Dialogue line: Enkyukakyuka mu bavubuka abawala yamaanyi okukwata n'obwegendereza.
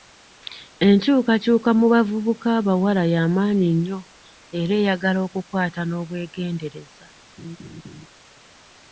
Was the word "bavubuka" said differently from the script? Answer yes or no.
no